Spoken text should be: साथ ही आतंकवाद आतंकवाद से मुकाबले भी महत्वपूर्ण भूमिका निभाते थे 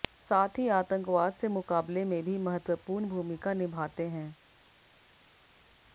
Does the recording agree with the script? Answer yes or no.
no